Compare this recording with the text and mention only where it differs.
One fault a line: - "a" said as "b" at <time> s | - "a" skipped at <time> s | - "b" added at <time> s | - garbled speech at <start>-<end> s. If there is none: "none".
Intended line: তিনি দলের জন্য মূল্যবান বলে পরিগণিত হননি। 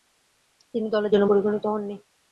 - "মূল্যবান বলে" skipped at 1.3 s